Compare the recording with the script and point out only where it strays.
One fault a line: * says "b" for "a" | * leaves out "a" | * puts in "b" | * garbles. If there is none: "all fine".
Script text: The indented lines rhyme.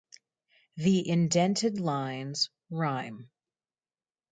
all fine